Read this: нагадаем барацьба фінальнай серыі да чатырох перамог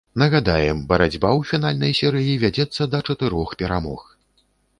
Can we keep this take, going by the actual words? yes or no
no